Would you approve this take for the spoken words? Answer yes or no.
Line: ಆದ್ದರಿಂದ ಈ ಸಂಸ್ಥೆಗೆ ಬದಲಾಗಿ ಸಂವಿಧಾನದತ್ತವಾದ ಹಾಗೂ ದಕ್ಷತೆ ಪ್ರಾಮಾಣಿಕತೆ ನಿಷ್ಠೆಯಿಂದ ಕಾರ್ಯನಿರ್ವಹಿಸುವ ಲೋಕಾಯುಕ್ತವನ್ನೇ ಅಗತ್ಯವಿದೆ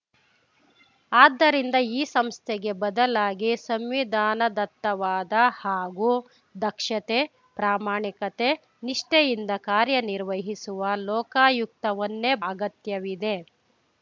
yes